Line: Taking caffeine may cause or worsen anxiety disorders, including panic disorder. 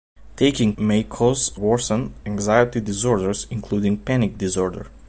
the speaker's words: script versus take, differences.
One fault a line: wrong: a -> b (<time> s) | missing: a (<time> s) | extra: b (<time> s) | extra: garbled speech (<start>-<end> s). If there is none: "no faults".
missing: caffeine (0.7 s)
missing: or (1.5 s)